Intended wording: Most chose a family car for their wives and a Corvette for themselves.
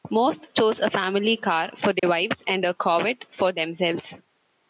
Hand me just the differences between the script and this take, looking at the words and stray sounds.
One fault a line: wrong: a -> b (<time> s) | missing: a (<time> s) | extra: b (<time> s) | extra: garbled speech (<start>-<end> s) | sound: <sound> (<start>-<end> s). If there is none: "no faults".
sound: dropout (2.0-2.0 s)